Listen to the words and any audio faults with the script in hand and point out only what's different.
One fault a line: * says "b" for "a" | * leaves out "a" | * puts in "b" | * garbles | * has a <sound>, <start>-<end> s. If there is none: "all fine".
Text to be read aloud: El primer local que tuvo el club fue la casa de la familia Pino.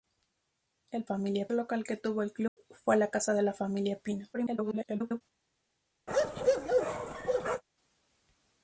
* says "familia" for "primer"
* has a dropout, 2.5-2.6 s
* garbles
* has a bark, 6.1-7.6 s